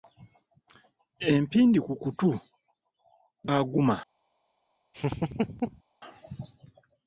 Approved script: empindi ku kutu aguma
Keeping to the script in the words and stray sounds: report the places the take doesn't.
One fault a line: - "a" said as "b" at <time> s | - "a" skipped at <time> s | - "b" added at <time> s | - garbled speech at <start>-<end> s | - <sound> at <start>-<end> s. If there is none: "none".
- laugh at 4.9-5.8 s